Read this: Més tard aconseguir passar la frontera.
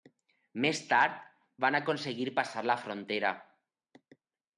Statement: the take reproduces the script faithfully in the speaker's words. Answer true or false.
false